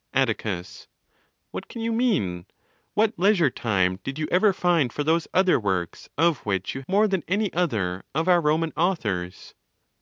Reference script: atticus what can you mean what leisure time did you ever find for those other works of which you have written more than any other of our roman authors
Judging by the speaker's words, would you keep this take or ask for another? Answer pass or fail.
fail